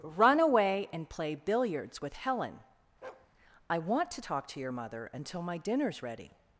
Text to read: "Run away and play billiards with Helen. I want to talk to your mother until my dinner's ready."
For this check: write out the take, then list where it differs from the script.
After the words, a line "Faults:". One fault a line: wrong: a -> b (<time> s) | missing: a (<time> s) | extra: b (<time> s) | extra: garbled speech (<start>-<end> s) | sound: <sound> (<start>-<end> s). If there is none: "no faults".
"Run away and play billiards with Helen. I want to talk to your mother until my dinner's ready."
Faults:
sound: bark (3.0-3.3 s)